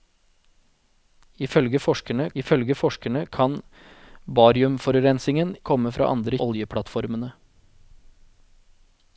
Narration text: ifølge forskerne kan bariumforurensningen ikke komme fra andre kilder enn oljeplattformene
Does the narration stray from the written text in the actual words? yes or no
yes